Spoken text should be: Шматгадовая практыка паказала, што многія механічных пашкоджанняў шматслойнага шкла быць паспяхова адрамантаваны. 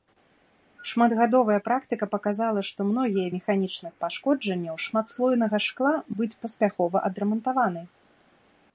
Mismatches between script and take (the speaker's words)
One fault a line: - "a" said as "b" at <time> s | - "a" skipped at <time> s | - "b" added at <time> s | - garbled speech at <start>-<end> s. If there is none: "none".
none